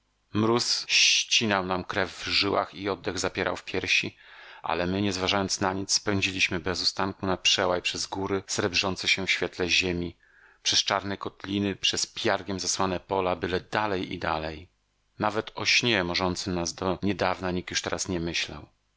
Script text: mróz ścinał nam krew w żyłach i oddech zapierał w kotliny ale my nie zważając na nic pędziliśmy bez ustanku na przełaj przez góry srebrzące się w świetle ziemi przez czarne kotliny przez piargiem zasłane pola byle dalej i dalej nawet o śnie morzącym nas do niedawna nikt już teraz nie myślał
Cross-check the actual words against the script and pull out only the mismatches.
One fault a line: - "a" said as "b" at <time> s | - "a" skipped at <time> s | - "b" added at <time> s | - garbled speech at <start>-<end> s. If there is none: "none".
- "kotliny" said as "piersi" at 3.6 s